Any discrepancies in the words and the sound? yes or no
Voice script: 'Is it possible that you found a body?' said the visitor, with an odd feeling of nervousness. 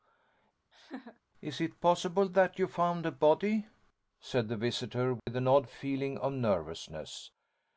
yes